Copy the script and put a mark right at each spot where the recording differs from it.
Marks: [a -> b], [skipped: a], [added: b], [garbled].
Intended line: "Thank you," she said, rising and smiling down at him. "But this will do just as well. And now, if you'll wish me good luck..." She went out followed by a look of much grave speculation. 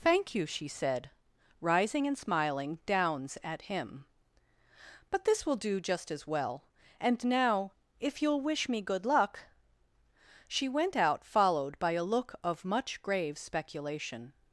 "Thank you," she said, rising and smiling [down -> downs] at him. "But this will do just as well. And now, if you'll wish me good luck..." She went out followed by a look of much grave speculation.